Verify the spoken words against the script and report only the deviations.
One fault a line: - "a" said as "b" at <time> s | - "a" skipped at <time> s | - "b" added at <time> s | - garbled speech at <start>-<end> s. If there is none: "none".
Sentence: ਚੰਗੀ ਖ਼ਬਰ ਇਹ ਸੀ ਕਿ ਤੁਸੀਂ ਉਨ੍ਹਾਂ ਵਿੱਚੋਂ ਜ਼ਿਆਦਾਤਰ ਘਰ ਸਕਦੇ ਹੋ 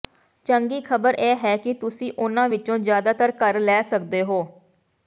- "ਸੀ" said as "ਹੈ" at 1.4 s
- "ਲੈ" added at 3.6 s